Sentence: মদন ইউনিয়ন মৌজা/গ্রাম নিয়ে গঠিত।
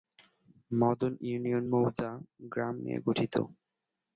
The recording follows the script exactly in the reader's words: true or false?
true